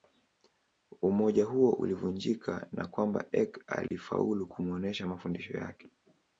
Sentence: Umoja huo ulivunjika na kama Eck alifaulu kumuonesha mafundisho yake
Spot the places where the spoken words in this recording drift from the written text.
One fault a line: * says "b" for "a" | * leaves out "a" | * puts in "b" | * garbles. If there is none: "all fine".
* says "kwamba" for "kama"